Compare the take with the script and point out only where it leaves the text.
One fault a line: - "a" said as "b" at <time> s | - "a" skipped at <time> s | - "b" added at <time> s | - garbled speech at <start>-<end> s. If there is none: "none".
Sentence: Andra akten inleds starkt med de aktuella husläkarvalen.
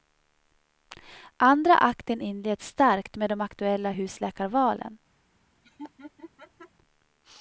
none